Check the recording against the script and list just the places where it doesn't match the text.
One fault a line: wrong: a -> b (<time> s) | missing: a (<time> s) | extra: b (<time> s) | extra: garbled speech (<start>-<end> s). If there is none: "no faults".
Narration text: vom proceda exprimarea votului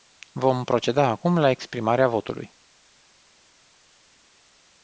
extra: acum la (1.1 s)